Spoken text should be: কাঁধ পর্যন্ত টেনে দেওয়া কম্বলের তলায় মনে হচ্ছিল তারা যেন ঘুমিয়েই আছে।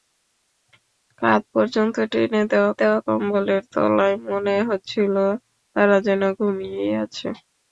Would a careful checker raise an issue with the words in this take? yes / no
yes